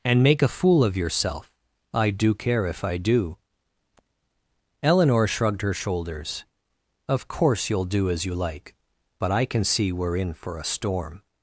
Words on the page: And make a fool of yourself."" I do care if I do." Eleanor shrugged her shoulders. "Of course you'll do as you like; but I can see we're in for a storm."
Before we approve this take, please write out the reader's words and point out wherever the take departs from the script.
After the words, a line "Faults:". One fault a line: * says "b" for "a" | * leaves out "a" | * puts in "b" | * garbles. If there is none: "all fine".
And make a fool of yourself."" I do care if I do." Eleanor shrugged her shoulders. "Of course you'll do as you like; but I can see we're in for a storm."
Faults:
all fine